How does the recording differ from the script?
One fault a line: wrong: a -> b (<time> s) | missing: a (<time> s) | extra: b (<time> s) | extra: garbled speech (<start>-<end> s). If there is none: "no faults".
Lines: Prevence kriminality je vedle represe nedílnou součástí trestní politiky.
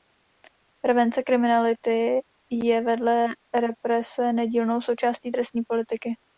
no faults